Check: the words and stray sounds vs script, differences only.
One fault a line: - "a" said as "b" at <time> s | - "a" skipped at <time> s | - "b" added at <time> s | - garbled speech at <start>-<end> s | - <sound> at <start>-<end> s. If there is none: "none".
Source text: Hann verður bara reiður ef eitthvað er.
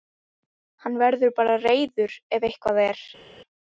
none